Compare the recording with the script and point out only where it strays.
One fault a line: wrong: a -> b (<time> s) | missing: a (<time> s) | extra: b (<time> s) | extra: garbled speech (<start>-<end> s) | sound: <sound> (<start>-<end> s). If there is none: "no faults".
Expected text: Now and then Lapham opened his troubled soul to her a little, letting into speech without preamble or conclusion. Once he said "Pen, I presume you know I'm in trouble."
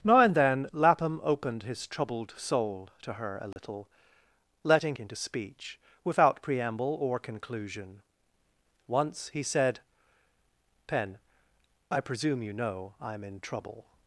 sound: dropout (3.5-3.6 s)